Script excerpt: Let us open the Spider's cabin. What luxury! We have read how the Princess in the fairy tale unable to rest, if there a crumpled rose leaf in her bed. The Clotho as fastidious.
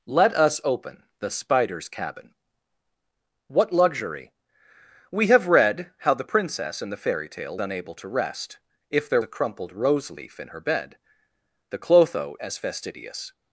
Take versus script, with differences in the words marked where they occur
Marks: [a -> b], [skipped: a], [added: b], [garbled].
Let us open the Spider's cabin. What luxury! We have read how the Princess in the fairy tale unable to rest, if there a crumpled rose leaf in her bed. The Clotho as fastidious.